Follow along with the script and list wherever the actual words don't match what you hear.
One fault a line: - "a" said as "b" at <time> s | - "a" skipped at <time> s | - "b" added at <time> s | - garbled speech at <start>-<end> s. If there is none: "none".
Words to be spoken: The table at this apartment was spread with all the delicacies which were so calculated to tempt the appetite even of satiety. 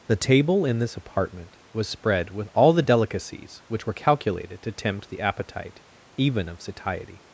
- "at" said as "in" at 0.7 s
- "so" skipped at 3.9 s